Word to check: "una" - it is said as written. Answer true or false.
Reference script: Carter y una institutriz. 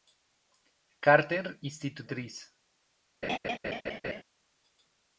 false